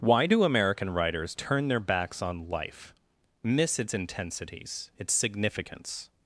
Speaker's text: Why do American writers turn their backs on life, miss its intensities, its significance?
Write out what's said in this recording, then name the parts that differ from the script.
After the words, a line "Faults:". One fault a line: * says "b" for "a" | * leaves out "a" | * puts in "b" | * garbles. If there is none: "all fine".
Why do American writers turn their backs on life, miss its intensities, its significance?
Faults:
all fine